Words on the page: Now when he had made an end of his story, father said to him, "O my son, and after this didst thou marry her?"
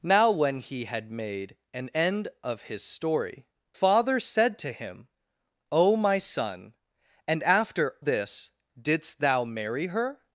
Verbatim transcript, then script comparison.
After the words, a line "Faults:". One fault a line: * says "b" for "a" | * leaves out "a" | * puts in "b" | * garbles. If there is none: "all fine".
Now when he had made an end of his story, father said to him, "O my son, and after this didst thou marry her?"
Faults:
all fine